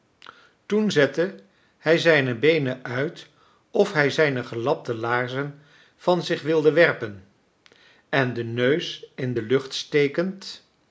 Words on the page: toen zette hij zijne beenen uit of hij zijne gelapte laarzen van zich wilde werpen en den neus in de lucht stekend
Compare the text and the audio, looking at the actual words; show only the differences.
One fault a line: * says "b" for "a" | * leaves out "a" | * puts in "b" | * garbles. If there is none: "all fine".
all fine